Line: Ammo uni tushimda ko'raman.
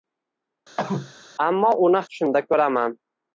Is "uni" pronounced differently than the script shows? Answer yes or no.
no